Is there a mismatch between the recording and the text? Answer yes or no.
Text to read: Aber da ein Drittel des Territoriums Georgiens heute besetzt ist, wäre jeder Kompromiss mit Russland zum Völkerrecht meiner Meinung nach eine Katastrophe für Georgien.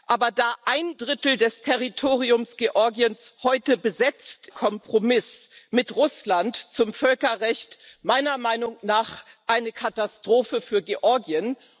yes